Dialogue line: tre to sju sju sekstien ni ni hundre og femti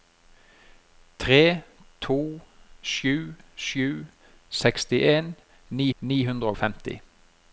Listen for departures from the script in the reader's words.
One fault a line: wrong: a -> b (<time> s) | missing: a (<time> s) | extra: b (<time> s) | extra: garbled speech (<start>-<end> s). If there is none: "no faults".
no faults